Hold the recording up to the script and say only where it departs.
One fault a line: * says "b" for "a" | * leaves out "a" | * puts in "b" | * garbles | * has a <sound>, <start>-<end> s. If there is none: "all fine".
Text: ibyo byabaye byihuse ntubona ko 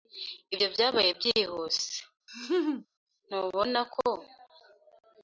* has a laugh, 2.3-2.9 s